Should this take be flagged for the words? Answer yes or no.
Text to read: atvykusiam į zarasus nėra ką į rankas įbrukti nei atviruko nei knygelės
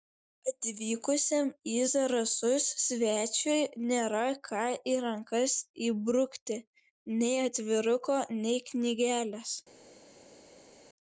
yes